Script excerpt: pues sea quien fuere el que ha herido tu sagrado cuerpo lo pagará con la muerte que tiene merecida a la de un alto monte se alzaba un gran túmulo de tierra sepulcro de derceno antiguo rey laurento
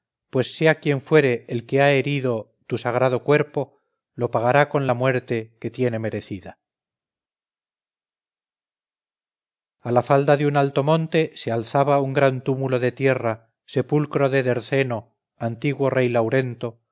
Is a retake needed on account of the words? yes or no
yes